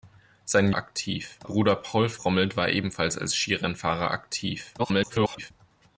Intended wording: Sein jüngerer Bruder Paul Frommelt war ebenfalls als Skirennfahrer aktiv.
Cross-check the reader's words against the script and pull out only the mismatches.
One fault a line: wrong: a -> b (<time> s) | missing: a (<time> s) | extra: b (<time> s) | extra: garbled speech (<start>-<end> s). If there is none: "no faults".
wrong: jüngerer -> aktiv (0.7 s)
extra: garbled speech (4.8-5.5 s)